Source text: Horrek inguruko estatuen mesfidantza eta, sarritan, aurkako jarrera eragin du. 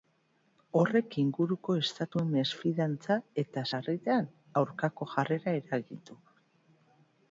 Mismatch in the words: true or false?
false